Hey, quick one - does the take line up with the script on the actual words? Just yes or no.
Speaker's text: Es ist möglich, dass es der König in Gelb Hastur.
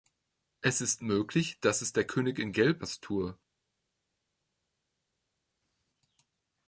yes